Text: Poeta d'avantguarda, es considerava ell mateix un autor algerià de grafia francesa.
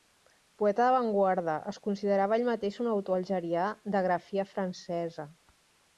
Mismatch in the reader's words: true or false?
false